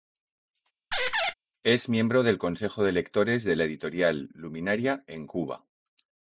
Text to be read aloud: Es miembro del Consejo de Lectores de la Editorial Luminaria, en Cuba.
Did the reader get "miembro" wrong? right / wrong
right